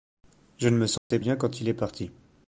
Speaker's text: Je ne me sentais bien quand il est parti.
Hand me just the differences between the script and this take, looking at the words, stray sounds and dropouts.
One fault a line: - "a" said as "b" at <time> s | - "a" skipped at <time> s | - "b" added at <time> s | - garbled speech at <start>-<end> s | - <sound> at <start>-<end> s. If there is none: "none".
- dropout at 1.0-1.1 s